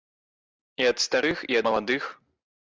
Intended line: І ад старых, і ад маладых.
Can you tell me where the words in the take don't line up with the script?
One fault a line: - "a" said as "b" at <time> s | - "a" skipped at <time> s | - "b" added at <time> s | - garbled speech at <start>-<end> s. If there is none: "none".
- "ад" skipped at 1.6 s